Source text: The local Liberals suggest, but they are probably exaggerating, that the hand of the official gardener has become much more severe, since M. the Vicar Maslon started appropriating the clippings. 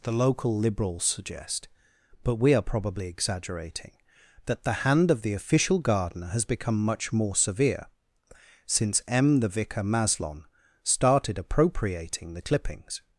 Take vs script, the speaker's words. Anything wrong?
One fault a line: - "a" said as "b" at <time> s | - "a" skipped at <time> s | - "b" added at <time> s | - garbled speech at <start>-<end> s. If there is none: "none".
- "they" said as "we" at 2.4 s